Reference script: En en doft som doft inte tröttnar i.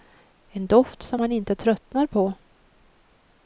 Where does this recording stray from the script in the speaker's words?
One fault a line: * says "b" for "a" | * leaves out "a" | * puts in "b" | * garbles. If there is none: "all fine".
* leaves out "en"
* says "man" for "doft"
* says "på" for "i"